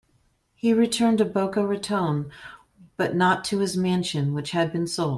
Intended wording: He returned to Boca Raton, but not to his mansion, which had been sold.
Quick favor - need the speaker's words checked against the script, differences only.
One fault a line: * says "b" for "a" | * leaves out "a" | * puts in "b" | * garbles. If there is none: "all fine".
all fine